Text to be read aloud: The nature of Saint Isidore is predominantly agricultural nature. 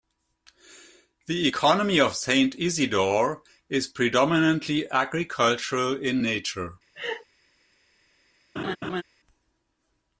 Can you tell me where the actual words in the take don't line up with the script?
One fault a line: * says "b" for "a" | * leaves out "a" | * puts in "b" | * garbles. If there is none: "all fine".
* says "economy" for "nature"
* puts in "in"